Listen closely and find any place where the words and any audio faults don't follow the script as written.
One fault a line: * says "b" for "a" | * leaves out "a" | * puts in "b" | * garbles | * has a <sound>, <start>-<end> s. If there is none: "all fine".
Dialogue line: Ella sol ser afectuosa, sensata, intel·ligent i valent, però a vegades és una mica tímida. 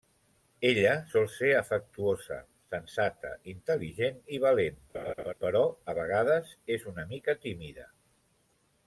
* has a laugh, 4.9-5.3 s